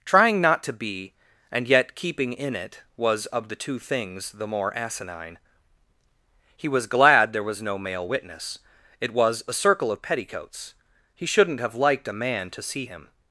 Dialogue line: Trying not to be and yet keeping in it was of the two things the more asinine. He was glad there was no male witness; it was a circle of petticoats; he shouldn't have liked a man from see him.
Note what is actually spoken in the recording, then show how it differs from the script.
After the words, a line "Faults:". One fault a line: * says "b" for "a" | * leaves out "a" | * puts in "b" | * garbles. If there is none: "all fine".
Trying not to be and yet keeping in it was of the two things the more asinine. He was glad there was no male witness; it was a circle of petticoats; he shouldn't have liked a man to see him.
Faults:
* says "to" for "from"